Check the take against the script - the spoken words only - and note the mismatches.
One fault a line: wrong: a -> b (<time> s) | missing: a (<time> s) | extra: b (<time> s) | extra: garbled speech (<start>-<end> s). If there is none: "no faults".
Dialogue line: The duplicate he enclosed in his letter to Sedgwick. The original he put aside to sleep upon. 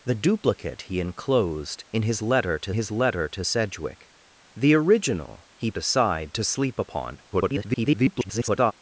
extra: his letter to (2.7 s)
missing: put (5.7 s)
extra: garbled speech (7.3-8.7 s)